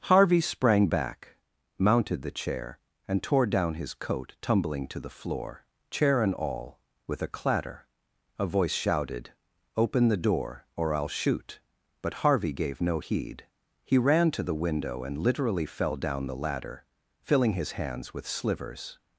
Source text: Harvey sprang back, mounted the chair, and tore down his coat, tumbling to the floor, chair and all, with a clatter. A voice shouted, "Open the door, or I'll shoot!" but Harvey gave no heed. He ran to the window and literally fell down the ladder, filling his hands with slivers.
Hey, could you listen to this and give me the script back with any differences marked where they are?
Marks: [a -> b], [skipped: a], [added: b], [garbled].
Harvey sprang back, mounted the chair, and tore down his coat, tumbling to the floor, chair and all, with a clatter. A voice shouted, "Open the door, or I'll shoot!" but Harvey gave no heed. He ran to the window and literally fell down the ladder, filling his hands with slivers.